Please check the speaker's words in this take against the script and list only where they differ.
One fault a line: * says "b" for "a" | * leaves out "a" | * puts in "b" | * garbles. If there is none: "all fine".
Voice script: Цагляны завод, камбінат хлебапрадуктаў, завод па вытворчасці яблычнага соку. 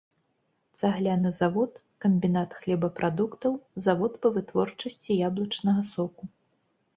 all fine